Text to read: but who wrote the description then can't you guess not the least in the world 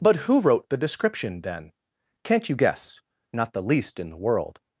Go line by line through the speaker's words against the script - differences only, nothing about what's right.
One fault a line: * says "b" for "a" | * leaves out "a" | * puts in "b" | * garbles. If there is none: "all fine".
all fine